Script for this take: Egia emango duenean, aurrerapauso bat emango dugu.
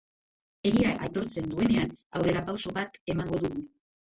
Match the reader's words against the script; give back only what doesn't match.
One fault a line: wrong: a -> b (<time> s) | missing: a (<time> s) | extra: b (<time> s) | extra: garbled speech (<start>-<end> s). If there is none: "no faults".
wrong: emango -> aitortzen (1.1 s)